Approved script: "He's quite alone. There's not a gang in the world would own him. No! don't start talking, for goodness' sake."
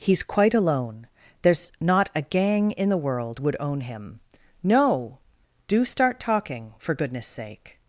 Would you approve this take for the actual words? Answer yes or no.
no